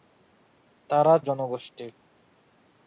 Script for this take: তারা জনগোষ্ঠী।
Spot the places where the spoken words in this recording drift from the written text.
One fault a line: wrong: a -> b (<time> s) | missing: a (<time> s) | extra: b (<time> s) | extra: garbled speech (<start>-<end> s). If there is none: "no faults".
no faults